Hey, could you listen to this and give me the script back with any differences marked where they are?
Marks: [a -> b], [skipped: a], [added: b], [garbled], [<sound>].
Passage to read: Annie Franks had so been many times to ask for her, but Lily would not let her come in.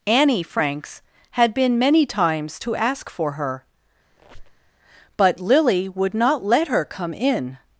Annie Franks had [skipped: so] been many times to ask for her, [squeak] but Lily would not let her come in.